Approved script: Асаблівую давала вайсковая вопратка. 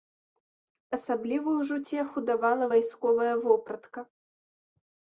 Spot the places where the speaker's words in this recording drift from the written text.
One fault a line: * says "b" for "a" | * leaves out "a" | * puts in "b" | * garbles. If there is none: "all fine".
* puts in "ж уцеху"